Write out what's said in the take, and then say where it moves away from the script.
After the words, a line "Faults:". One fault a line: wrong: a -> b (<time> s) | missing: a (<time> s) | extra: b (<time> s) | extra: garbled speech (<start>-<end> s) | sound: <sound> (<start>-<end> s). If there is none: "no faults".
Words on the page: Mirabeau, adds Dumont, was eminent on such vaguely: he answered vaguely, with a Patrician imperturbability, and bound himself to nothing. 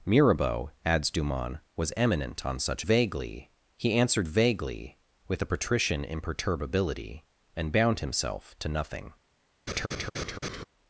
Mirabeau, adds Dumont, was eminent on such vaguely: he answered vaguely, with a Patrician imperturbability, and bound himself to nothing.
Faults:
sound: laugh (9.7-10.6 s)